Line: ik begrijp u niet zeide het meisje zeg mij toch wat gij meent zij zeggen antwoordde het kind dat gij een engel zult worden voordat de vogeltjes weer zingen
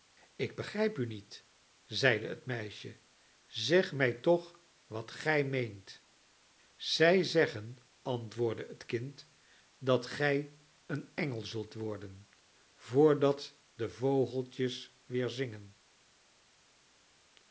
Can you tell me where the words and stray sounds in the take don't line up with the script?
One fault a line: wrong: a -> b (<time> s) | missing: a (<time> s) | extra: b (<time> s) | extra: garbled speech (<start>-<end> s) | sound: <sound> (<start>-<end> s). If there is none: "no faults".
no faults